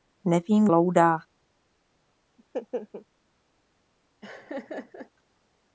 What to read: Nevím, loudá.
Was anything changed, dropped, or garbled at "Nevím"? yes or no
no